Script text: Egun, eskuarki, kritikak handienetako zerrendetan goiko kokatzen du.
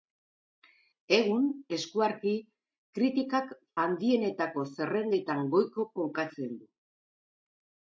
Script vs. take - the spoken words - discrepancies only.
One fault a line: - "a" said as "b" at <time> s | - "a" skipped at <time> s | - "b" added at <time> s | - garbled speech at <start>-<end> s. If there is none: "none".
none